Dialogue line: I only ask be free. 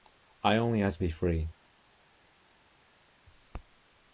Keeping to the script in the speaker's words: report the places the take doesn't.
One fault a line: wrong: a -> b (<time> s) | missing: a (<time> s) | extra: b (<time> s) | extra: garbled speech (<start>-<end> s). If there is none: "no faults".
no faults